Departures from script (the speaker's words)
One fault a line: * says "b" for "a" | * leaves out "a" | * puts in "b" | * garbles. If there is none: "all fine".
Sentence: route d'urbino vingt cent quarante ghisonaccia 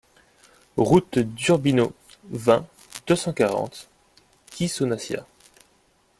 * puts in "deux"